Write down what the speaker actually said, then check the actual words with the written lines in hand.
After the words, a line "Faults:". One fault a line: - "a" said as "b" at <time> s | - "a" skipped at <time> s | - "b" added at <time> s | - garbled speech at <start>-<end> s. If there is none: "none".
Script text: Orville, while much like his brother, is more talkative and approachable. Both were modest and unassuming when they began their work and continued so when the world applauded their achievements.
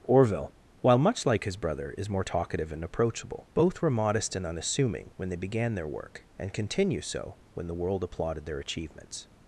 Orville, while much like his brother, is more talkative and approachable. Both were modest and unassuming when they began their work and continue so when the world applauded their achievements.
Faults:
- "continued" said as "continue" at 6.5 s